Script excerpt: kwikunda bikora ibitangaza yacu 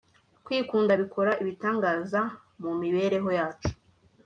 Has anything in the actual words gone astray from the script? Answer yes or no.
yes